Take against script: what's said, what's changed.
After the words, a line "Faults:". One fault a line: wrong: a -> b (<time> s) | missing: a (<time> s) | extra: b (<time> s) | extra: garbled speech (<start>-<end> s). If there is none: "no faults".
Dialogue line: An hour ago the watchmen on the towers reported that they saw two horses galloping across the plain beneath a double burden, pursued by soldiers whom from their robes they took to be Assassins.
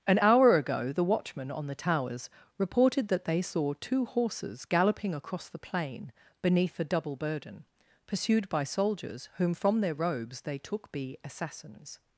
An hour ago the watchmen on the towers reported that they saw two horses galloping across the plain beneath a double burden, pursued by soldiers whom from their robes they took be Assassins.
Faults:
missing: to (10.9 s)